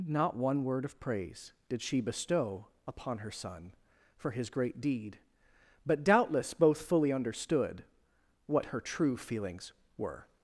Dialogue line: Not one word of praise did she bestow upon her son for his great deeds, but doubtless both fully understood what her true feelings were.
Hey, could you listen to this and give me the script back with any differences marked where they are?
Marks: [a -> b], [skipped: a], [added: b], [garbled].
Not one word of praise did she bestow upon her son for his great [deeds, -> deed] but doubtless both fully understood what her true feelings were.